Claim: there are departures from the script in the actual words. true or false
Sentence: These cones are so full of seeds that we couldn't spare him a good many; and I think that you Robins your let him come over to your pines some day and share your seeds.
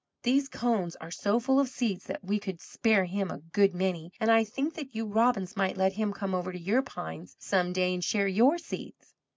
true